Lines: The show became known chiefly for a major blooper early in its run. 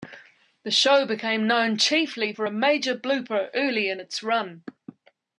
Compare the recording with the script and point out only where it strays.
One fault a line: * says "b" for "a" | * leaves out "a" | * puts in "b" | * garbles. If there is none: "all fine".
all fine